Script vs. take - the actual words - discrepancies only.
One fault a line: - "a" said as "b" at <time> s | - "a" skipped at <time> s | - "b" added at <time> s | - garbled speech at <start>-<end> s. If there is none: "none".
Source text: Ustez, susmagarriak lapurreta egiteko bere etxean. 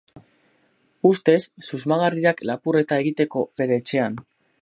none